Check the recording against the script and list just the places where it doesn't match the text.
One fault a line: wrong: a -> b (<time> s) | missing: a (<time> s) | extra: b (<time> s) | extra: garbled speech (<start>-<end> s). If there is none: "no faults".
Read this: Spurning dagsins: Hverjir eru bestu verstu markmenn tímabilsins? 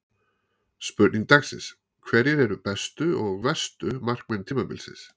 extra: og (3.3 s)